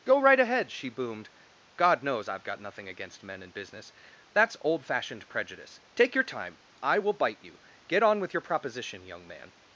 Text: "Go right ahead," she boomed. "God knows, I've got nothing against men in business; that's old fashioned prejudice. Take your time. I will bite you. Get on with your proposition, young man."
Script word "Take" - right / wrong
right